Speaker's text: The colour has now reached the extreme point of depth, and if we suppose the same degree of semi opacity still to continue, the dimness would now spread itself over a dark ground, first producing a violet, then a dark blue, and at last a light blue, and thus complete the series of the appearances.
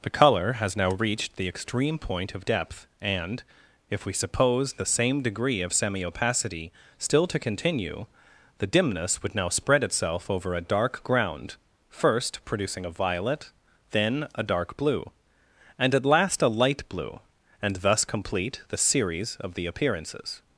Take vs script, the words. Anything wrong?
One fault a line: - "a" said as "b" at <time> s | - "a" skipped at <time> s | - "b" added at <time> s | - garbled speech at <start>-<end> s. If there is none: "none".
none